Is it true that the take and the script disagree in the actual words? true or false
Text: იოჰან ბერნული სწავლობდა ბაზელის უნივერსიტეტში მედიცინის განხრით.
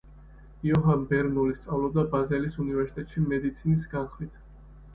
false